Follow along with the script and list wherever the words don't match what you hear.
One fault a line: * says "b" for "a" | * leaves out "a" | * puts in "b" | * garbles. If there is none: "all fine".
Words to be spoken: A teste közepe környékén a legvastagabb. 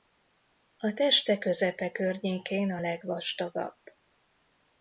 all fine